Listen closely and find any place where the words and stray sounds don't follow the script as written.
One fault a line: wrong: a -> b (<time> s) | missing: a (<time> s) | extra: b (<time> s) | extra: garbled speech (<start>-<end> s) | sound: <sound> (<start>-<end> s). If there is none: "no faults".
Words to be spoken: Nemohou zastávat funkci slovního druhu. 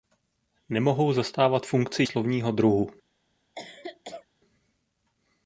sound: cough (3.5-4.3 s)